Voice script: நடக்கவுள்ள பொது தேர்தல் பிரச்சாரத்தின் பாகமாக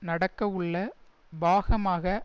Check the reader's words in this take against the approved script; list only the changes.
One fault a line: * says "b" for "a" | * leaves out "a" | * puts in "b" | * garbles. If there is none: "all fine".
* leaves out "பொது தேர்தல் பிரச்சாரத்தின்"